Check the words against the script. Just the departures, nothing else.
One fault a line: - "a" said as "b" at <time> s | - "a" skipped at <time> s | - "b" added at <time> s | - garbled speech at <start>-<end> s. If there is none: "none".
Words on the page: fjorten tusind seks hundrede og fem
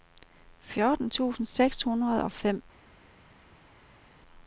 none